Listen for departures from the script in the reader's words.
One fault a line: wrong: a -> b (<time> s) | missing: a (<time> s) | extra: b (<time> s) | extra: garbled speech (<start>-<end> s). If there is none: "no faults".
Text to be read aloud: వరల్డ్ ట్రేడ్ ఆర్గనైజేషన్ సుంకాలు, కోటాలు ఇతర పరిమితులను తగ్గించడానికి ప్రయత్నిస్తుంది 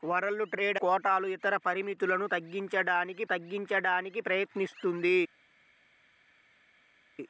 missing: ఆర్గనైజేషన్ సుంకాలు (0.8 s)
extra: తగ్గించడానికి (3.2 s)